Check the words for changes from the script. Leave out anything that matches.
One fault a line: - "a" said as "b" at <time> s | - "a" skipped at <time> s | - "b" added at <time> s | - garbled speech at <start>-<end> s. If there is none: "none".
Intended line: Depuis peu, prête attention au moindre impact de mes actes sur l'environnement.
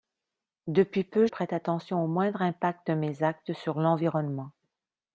none